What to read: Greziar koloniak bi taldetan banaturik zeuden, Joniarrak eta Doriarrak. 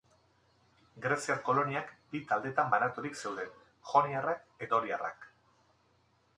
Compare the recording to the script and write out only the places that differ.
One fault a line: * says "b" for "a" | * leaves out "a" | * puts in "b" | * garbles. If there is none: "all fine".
* leaves out "eta"